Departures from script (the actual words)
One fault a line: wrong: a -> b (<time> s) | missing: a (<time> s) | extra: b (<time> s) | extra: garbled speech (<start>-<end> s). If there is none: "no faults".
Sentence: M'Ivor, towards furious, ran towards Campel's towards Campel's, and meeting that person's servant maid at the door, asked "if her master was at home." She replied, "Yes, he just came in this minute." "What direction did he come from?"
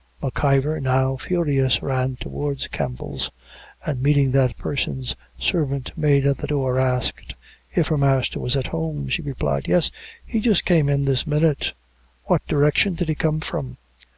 wrong: towards -> now (0.8 s)
missing: towards Campel's (3.3 s)